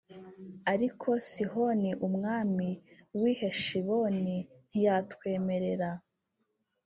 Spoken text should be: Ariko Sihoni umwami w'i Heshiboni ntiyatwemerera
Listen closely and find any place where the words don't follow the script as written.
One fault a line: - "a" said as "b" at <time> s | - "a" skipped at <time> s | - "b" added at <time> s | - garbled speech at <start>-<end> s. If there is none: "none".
none